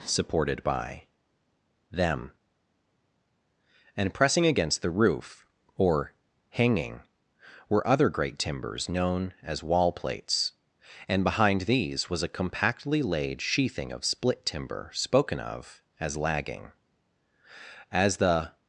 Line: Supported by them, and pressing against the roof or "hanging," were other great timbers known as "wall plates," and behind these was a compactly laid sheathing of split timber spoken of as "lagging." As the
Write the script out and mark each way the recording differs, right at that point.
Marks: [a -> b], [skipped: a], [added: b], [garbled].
Supported by them, and pressing against the roof or "hanging," were other great timbers known as "wall plates," and behind these was a compactly laid sheathing of split timber spoken of as "lagging." As the